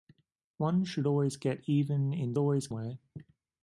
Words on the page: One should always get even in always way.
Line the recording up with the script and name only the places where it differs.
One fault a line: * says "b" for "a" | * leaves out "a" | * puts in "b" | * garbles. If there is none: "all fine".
all fine